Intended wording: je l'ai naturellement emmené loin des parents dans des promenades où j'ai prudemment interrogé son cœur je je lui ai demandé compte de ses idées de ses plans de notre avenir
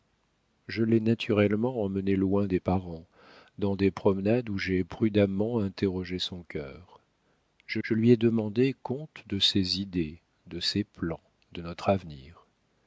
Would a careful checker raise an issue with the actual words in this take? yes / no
no